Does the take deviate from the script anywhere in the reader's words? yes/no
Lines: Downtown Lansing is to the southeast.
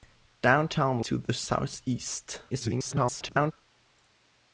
yes